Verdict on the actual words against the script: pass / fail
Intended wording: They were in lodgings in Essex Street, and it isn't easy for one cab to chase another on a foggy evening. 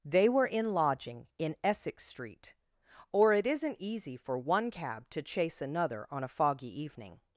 fail